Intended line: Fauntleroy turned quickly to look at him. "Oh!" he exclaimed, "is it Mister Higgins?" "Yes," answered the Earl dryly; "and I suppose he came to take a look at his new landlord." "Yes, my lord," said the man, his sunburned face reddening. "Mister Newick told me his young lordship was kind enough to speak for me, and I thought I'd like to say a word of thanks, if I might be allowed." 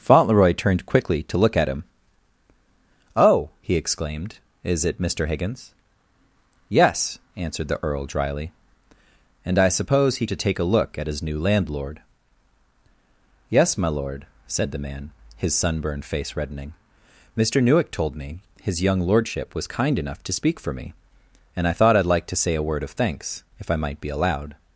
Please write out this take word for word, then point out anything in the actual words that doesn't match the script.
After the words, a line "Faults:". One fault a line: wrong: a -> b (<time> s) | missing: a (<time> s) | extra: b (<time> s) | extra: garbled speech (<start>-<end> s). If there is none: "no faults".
Fauntleroy turned quickly to look at him. "Oh!" he exclaimed, "is it Mister Higgins?" "Yes," answered the Earl dryly; "and I suppose he to take a look at his new landlord." "Yes, my lord," said the man, his sunburned face reddening. "Mister Newick told me his young lordship was kind enough to speak for me, and I thought I'd like to say a word of thanks, if I might be allowed."
Faults:
missing: came (10.2 s)